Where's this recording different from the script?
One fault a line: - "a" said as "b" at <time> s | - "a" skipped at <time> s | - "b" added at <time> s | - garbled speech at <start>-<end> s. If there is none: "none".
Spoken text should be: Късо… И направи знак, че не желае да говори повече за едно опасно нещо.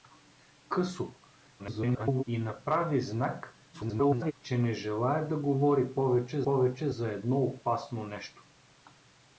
- garbled speech at 1.6-2.2 s
- garbled speech at 3.7-4.3 s
- "повече" added at 6.4 s